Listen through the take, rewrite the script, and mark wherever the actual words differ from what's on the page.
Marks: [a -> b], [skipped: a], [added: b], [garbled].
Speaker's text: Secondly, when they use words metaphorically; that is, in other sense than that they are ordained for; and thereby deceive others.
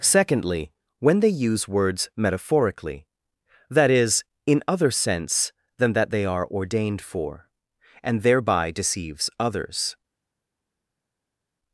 Secondly, when they use words metaphorically; that is, in other sense than that they are ordained for; and thereby [deceive -> deceives] others.